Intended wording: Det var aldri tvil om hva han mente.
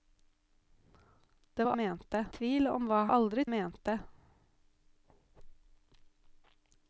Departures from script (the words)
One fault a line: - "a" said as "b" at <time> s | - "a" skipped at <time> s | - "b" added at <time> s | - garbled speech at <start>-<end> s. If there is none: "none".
- "aldri" said as "mente" at 1.8 s
- "han" said as "aldri" at 3.1 s